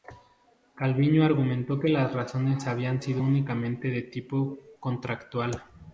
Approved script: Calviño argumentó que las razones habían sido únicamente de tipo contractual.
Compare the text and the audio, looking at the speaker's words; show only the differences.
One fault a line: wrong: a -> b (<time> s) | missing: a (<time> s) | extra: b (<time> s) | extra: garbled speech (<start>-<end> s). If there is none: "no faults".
no faults